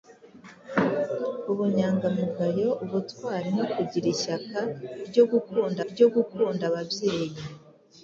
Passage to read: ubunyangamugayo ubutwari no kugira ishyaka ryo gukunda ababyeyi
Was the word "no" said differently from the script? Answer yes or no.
no